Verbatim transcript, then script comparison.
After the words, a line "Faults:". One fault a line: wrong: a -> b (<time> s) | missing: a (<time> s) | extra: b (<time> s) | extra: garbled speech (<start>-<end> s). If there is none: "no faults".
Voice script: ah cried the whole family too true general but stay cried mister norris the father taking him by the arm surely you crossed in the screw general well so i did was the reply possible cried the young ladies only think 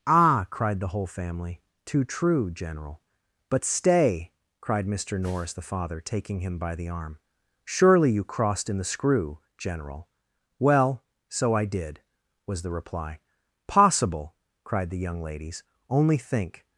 ah cried the whole family too true general but stay cried mister norris the father taking him by the arm surely you crossed in the screw general well so i did was the reply possible cried the young ladies only think
Faults:
no faults